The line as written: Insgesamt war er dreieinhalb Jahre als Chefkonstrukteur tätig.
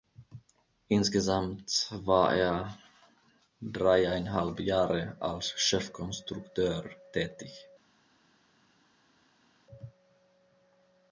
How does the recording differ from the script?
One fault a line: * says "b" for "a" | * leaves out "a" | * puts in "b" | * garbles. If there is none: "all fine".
all fine